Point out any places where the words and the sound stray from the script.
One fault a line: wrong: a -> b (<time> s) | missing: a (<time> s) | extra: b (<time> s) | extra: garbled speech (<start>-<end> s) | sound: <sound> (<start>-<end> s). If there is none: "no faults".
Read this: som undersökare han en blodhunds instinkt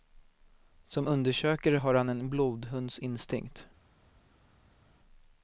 extra: har (1.7 s)